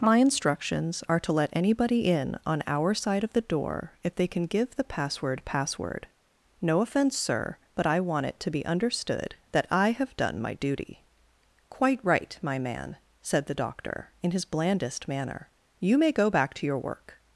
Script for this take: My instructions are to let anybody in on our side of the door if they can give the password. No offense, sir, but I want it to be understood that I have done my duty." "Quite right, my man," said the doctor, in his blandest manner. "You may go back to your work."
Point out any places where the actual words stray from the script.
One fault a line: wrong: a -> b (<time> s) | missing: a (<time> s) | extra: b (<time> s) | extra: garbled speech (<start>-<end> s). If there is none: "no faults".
extra: password (5.5 s)